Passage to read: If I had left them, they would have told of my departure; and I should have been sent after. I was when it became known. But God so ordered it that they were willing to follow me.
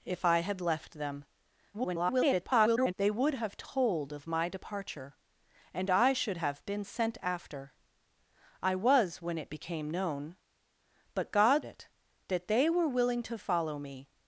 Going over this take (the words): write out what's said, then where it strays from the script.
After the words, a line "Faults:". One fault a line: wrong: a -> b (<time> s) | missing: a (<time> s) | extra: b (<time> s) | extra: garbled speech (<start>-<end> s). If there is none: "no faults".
If I had left them, [garbled] they would have told of my departure; and I should have been sent after. I was when it became known. But God it that they were willing to follow me.
Faults:
extra: garbled speech (1.7-2.9 s)
missing: so ordered (11.6 s)